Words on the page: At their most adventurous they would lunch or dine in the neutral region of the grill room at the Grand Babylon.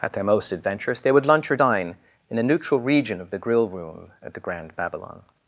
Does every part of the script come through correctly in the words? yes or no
no